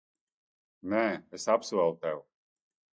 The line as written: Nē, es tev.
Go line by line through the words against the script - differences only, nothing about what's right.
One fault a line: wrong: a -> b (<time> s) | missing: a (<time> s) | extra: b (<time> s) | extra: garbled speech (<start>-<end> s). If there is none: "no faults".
extra: apsolu (1.6 s)